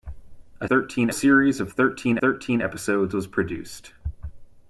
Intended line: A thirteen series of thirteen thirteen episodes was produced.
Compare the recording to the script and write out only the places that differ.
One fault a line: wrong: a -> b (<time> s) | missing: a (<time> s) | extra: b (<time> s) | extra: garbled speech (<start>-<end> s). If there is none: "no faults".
no faults